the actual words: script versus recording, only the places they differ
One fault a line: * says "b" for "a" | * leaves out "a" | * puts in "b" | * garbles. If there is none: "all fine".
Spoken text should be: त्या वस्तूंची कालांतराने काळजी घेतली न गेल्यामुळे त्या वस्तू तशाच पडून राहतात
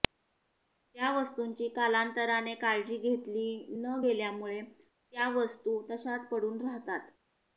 all fine